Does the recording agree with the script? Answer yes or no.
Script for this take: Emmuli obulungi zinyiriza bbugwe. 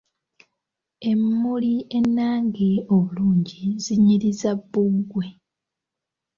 no